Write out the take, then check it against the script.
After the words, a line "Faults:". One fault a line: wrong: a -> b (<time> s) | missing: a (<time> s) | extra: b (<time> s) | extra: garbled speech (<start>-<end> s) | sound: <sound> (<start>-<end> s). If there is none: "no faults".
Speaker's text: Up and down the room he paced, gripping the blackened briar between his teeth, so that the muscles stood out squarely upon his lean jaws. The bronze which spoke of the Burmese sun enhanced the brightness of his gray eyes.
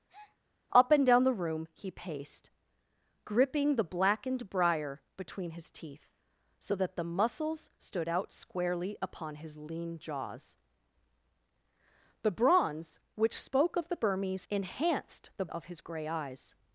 Up and down the room he paced, gripping the blackened briar between his teeth, so that the muscles stood out squarely upon his lean jaws. The bronze which spoke of the Burmese enhanced the of his gray eyes.
Faults:
sound: breath (0.1-0.4 s)
missing: sun (14.4 s)
missing: brightness (15.5 s)